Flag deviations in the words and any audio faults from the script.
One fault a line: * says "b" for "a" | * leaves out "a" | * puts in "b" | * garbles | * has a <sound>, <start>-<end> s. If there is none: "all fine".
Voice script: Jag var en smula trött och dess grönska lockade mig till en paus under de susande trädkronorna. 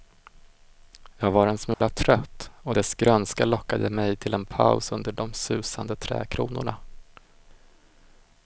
* has a dropout, 1.7-1.8 s